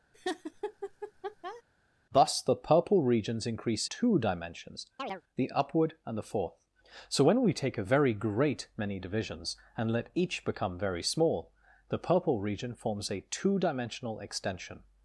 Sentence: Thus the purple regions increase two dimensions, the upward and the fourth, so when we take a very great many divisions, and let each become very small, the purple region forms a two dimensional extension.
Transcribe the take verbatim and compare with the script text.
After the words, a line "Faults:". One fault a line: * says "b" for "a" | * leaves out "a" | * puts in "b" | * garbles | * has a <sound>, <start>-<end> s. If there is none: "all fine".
Thus the purple regions increase two dimensions, the upward and the fourth, so when we take a very great many divisions, and let each become very small, the purple region forms a two dimensional extension.
Faults:
* has a laugh, 0.1-1.6 s
* has a chirp, 5.0-5.2 s